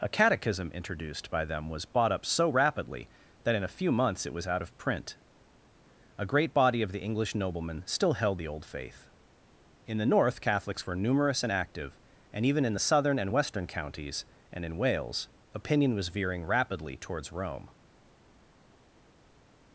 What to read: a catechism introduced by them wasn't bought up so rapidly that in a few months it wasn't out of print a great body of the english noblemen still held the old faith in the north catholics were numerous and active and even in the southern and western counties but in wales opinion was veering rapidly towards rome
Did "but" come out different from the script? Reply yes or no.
yes